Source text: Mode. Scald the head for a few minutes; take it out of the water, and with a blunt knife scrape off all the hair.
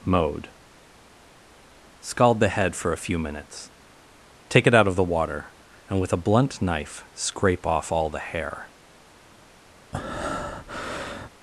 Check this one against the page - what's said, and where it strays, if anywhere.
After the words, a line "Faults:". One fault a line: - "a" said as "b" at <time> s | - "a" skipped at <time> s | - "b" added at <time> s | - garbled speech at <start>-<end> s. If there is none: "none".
Mode. Scald the head for a few minutes; take it out of the water, and with a blunt knife scrape off all the hair.
Faults:
none